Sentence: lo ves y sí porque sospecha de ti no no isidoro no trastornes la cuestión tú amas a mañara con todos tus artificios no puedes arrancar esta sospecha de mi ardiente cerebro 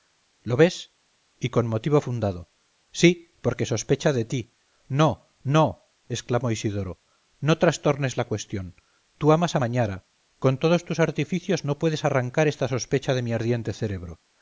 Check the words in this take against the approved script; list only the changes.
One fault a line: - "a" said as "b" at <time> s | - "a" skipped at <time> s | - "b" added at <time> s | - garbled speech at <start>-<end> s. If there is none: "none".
- "con motivo fundado" added at 1.5 s
- "exclamó" added at 6.1 s